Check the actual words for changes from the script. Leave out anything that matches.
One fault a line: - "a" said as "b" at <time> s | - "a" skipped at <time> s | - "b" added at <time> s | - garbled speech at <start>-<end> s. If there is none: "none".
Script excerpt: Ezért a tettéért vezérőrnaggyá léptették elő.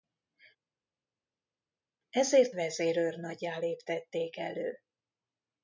- "a tettéért" skipped at 2.6 s